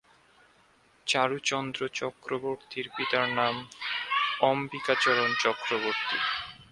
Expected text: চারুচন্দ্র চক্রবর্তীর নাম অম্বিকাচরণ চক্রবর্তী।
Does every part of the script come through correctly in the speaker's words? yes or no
no